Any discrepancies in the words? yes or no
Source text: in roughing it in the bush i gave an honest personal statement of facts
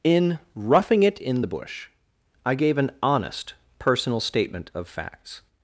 no